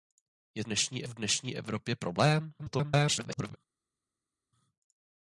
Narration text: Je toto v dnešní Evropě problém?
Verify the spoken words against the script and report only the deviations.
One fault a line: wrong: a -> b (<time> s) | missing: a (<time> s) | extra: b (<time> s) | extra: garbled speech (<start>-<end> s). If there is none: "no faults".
wrong: toto -> dnešní (0.6 s)
extra: garbled speech (2.6-3.6 s)